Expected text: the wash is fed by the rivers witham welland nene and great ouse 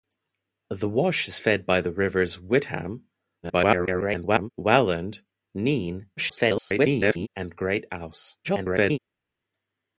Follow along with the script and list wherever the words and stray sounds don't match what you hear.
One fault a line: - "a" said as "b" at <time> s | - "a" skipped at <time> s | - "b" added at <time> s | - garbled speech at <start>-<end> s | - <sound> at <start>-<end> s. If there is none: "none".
- garbled speech at 3.4-4.5 s
- garbled speech at 6.2-7.3 s
- garbled speech at 8.4-9.0 s